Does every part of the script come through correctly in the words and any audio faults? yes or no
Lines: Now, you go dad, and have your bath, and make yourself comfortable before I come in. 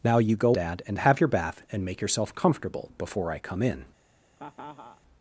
no